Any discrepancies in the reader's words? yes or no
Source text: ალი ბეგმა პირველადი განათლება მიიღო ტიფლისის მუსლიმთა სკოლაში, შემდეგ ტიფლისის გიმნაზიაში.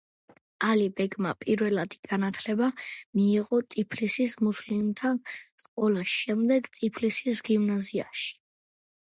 no